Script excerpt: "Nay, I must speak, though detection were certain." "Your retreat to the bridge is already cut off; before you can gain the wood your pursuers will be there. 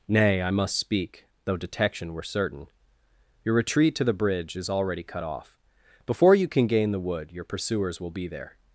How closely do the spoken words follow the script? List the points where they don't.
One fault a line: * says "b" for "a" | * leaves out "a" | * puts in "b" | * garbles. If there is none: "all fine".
all fine